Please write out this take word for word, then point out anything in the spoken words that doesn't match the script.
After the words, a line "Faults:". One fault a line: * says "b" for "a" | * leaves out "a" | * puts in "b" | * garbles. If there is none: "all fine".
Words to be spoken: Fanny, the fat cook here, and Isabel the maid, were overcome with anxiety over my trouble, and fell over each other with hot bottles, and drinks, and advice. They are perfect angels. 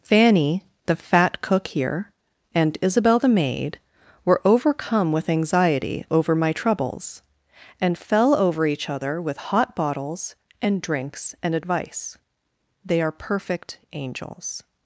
Fanny, the fat cook here, and Isabel the maid, were overcome with anxiety over my troubles, and fell over each other with hot bottles, and drinks, and advice. They are perfect angels.
Faults:
* says "troubles" for "trouble"